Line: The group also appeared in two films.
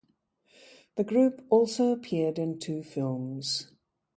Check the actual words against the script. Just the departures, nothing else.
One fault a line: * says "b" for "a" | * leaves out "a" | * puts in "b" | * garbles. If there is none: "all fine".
all fine